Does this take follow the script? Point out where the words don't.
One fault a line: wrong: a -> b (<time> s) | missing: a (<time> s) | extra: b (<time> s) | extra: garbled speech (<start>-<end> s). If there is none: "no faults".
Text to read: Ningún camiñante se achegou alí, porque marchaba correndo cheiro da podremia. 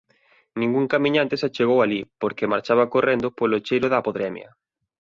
extra: polo (3.4 s)